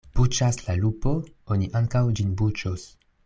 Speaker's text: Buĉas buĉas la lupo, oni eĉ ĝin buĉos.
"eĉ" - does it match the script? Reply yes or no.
no